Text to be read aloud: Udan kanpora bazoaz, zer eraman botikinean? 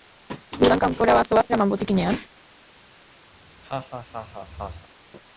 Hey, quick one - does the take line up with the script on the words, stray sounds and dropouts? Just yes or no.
no